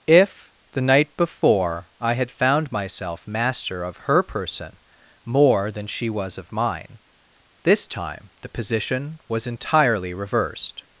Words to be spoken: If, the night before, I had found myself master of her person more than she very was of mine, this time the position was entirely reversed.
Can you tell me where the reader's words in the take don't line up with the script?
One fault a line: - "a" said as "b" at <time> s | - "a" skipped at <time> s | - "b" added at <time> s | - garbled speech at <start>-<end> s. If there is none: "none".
- "very" skipped at 6.1 s